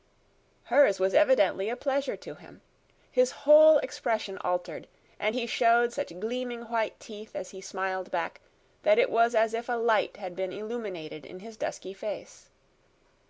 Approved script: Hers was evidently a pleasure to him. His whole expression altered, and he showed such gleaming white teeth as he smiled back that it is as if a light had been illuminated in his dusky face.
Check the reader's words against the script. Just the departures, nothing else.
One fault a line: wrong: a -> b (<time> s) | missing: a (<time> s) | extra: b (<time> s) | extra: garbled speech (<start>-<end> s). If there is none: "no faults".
wrong: is -> was (9.1 s)